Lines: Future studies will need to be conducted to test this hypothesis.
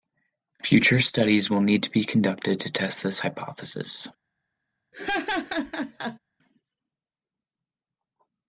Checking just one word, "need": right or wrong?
right